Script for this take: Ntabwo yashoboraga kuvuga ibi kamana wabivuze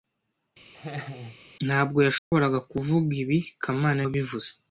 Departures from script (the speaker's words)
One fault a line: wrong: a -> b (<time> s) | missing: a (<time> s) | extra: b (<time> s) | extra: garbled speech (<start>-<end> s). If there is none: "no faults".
no faults